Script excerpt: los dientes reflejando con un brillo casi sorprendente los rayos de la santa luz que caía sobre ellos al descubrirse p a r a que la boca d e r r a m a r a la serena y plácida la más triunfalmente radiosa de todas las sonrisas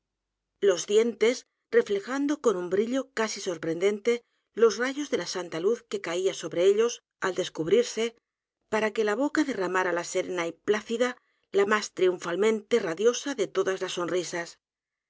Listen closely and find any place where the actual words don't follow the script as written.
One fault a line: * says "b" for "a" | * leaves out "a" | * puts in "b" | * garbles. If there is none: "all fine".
all fine